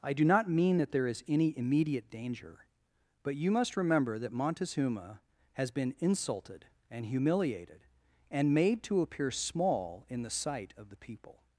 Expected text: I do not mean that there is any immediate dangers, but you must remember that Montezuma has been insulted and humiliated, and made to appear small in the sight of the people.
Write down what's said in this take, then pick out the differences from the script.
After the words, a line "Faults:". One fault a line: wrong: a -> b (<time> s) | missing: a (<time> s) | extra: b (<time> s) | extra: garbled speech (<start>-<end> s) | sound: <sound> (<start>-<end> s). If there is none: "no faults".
I do not mean that there is any immediate danger, but you must remember that Montezuma has been insulted and humiliated, and made to appear small in the sight of the people.
Faults:
wrong: dangers -> danger (2.1 s)